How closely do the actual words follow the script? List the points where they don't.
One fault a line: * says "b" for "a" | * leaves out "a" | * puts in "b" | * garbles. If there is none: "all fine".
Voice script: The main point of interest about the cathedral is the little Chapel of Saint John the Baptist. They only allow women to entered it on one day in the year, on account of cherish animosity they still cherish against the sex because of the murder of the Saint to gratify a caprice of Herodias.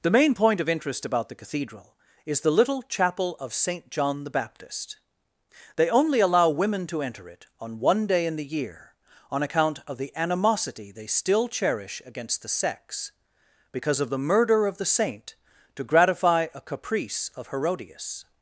* says "enter" for "entered"
* says "the" for "cherish"